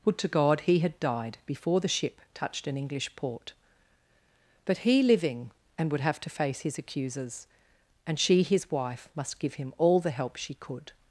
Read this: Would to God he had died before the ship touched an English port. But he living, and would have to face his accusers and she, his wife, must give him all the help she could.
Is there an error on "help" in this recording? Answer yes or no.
no